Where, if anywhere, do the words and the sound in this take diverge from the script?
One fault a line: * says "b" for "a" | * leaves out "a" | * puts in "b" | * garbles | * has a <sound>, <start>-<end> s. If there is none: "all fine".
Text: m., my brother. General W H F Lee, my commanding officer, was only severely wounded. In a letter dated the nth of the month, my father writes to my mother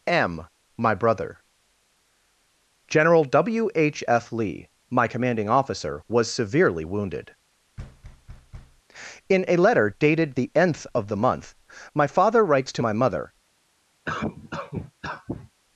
* leaves out "only"
* has a thud, 7.8-8.8 s
* has a cough, 14.0-15.5 s